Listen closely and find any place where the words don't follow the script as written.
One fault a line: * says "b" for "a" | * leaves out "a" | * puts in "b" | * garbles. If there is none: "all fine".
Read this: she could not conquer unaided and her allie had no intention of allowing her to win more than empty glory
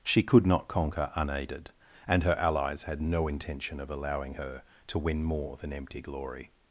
* says "allies" for "allie"